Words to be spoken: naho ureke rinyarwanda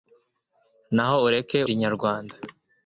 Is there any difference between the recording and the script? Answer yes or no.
no